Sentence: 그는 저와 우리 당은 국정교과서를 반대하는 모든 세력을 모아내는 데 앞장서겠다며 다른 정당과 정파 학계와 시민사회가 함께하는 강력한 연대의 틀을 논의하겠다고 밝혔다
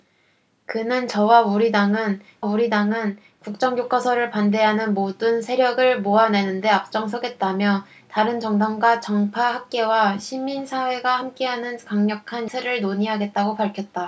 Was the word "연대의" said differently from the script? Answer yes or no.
yes